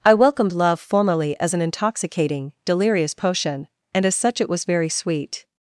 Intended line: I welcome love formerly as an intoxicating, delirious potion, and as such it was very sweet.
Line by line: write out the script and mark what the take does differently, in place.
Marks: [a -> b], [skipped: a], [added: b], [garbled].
I [welcome -> welcomed] love formerly as an intoxicating, delirious potion, and as such it was very sweet.